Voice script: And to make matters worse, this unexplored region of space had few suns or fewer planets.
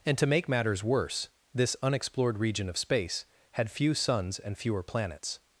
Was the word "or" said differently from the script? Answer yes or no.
yes